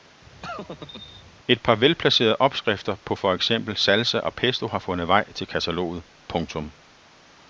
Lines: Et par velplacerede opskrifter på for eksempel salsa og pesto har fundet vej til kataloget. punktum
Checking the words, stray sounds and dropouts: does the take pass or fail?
fail